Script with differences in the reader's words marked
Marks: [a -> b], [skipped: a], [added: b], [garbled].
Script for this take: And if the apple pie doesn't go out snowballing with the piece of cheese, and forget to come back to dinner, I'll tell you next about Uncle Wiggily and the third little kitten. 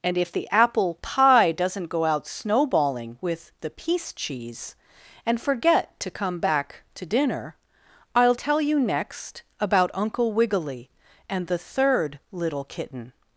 And if the apple pie doesn't go out snowballing with the piece [skipped: of] cheese, and forget to come back to dinner, I'll tell you next about Uncle Wiggily and the third little kitten.